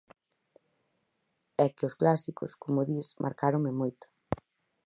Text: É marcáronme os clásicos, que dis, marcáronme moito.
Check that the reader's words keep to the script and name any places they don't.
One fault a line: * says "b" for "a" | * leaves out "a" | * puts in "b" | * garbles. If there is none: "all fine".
* says "que" for "marcáronme"
* says "como" for "que"